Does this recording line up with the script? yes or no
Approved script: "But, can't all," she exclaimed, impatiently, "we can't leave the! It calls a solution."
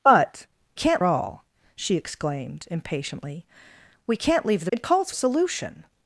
yes